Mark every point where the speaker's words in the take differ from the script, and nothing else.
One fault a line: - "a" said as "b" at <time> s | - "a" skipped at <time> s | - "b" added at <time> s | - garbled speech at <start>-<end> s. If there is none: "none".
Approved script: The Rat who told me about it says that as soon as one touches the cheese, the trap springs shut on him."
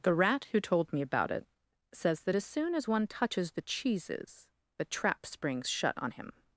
- "cheese" said as "cheeses" at 3.6 s